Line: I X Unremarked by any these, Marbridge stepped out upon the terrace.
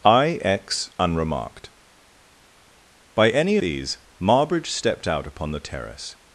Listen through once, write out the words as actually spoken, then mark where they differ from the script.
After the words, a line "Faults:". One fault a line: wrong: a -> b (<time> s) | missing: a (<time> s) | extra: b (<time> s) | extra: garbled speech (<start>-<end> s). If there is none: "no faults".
I X Unremarked by any these, Marbridge stepped out upon the terrace.
Faults:
no faults